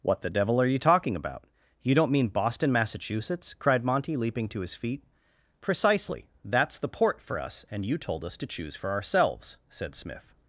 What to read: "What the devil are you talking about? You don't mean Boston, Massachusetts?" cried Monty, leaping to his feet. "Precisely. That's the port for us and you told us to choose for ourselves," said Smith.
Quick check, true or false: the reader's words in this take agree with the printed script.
true